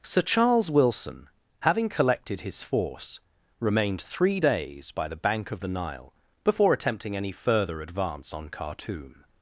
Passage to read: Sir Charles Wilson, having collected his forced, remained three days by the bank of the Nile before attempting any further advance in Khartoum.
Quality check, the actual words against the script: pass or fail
fail